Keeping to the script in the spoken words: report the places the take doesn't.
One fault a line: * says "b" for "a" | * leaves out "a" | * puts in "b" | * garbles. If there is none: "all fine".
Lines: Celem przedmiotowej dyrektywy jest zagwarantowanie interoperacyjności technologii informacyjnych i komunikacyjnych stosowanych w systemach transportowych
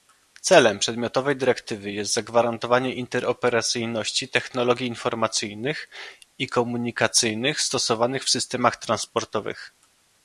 all fine